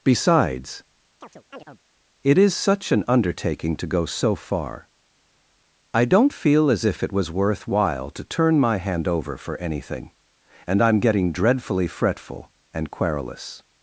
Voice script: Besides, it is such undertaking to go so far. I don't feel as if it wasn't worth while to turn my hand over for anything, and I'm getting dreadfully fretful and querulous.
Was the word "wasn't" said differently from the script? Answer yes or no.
yes